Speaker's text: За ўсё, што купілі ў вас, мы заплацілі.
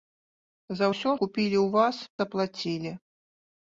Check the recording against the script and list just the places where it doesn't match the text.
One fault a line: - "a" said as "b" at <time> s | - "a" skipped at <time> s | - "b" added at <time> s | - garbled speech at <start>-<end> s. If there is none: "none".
- "што" skipped at 1.1 s
- "мы" skipped at 2.0 s